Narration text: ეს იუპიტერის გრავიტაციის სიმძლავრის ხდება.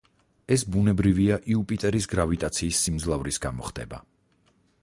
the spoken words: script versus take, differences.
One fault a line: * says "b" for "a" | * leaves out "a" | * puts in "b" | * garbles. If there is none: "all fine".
* puts in "ბუნებრივია"
* puts in "გამო"